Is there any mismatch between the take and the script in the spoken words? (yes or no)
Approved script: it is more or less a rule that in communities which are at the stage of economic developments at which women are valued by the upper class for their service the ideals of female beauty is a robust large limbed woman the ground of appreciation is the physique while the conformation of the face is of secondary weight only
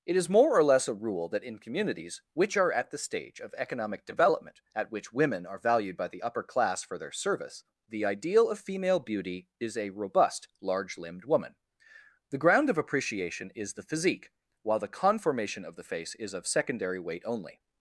yes